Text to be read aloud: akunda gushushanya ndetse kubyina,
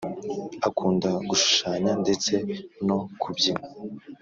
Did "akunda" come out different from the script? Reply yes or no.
no